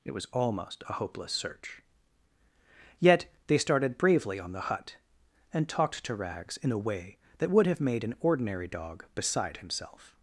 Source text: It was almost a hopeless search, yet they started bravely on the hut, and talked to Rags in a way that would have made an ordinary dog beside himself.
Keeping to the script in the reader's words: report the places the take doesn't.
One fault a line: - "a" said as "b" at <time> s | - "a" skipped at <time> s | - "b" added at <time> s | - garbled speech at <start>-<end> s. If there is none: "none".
none